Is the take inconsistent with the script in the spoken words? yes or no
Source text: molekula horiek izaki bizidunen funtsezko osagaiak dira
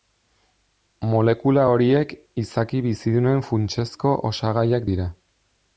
no